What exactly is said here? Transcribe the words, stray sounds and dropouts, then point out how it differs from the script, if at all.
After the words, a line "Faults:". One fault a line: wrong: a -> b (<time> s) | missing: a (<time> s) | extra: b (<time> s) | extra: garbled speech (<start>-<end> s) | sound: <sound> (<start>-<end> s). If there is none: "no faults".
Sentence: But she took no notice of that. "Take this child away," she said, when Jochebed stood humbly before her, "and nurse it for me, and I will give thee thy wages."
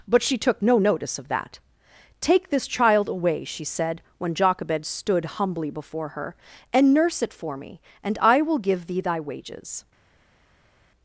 But she took no notice of that. "Take this child away," she said, when Jochebed stood humbly before her, "and nurse it for me, and I will give thee thy wages."
Faults:
no faults